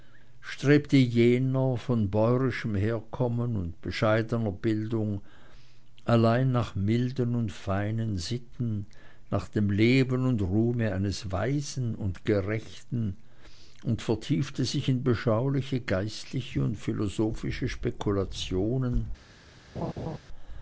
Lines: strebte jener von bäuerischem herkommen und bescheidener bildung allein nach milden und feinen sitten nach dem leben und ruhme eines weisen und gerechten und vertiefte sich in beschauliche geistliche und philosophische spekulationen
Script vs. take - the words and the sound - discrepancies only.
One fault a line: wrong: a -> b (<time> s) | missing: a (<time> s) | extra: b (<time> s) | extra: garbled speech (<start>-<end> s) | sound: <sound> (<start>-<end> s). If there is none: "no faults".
sound: laugh (19.7-20.2 s)